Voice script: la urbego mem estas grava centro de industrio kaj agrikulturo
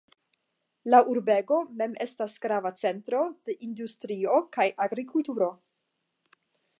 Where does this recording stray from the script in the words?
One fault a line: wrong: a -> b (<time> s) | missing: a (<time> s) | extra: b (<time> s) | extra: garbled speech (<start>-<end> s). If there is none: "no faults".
no faults